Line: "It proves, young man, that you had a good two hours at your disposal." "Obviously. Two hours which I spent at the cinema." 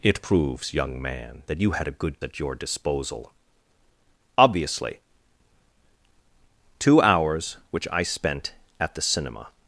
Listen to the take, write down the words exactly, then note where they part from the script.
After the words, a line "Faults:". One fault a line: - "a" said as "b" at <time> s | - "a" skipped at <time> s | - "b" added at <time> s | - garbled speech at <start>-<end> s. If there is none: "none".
"It proves, young man, that you had a good at your disposal." "Obviously. Two hours which I spent at the cinema."
Faults:
- "two hours" skipped at 2.2 s